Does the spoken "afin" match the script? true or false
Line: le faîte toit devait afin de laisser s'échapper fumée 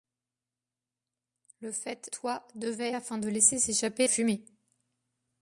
true